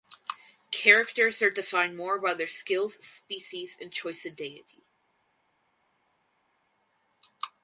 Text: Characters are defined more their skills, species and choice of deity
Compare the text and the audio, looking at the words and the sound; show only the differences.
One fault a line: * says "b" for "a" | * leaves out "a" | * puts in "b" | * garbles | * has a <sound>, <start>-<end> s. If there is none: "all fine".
* puts in "by"